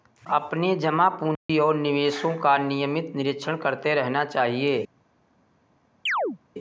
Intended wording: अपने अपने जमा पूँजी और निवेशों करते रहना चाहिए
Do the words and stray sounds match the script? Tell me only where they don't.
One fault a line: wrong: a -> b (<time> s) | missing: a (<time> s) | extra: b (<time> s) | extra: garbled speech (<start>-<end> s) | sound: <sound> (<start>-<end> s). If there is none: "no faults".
missing: अपने (0.8 s)
sound: dropout (1.4-1.5 s)
extra: का नियमित निरीक्षण (2.4 s)
sound: chirp (6.1-6.4 s)